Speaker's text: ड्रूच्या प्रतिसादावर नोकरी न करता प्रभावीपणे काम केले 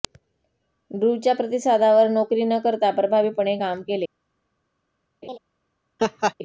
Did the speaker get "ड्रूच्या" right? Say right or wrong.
right